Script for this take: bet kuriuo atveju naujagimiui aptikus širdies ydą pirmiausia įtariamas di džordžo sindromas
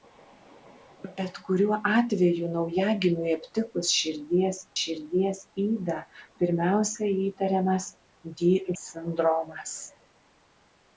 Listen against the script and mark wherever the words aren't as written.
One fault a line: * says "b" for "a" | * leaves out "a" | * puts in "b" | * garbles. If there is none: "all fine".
* puts in "širdies"
* leaves out "džordžo"